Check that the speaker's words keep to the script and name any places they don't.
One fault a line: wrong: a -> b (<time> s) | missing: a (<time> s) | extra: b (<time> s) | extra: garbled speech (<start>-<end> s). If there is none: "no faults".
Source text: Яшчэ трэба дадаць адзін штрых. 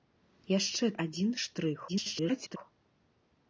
missing: трэба дадаць (0.8 s)
extra: garbled speech (1.9-2.6 s)